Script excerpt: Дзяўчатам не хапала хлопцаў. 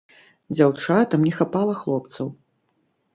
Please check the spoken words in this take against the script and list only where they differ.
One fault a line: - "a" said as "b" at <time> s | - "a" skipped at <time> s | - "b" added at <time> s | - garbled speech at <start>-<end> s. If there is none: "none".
none